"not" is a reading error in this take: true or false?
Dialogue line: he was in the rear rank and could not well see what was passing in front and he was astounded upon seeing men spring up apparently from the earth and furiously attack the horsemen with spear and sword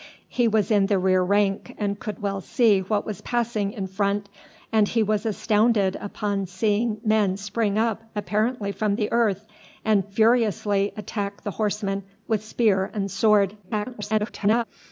true